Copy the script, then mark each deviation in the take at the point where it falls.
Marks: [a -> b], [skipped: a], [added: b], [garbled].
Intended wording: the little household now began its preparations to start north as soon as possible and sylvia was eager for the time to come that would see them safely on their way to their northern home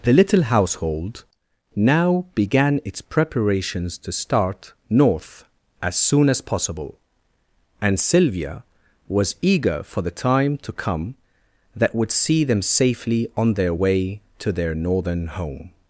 the little household now began its preparations to start north as soon as possible and sylvia was eager for the time to come that would see them safely on their way to their northern home